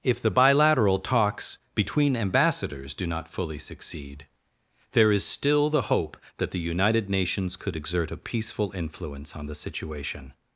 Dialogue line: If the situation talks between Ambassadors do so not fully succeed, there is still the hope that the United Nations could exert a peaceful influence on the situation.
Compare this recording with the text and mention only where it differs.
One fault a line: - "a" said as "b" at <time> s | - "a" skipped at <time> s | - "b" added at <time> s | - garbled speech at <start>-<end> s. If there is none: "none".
- "situation" said as "bilateral" at 0.3 s
- "so" skipped at 3.0 s